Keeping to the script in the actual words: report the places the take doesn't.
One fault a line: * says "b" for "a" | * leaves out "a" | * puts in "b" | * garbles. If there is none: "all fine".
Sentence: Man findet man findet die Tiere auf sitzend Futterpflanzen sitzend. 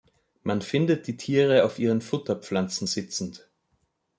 * leaves out "man findet"
* says "ihren" for "sitzend"